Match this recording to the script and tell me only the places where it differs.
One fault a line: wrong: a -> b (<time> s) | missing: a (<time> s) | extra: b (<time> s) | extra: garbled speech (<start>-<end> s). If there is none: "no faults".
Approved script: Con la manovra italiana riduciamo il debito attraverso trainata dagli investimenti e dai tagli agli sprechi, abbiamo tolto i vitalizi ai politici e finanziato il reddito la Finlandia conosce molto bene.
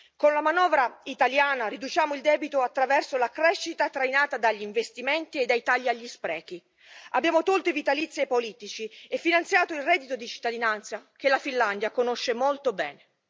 extra: la crescita (3.2 s)
extra: di cittadinanza che (10.1 s)